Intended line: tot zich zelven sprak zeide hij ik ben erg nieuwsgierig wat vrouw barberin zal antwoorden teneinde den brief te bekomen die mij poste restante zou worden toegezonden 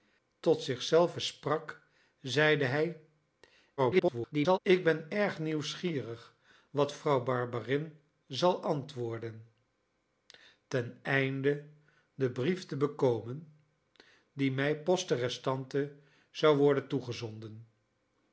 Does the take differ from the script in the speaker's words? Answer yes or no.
yes